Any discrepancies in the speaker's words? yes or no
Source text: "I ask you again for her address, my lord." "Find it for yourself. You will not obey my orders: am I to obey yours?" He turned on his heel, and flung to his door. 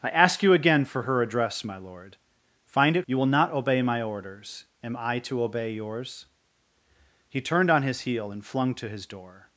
yes